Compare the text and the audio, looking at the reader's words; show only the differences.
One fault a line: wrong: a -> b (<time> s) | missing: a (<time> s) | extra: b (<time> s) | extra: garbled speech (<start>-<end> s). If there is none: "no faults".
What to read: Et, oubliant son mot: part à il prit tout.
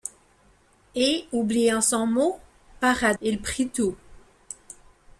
no faults